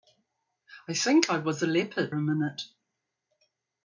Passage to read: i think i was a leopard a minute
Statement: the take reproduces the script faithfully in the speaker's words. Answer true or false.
true